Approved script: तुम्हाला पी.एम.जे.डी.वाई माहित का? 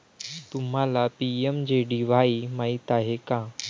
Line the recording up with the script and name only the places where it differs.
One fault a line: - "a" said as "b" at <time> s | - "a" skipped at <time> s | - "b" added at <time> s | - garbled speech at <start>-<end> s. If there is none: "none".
- "आहे" added at 2.9 s